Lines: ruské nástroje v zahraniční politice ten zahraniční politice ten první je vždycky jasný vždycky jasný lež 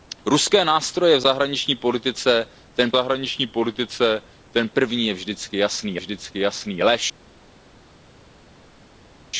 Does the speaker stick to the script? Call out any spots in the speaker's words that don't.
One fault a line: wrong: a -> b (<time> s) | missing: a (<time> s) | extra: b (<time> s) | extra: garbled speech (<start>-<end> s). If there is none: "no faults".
no faults